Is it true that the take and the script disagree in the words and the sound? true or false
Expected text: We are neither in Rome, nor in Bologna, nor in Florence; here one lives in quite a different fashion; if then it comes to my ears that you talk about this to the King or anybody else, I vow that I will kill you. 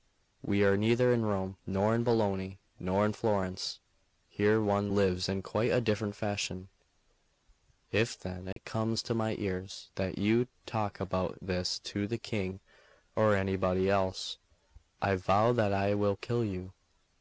true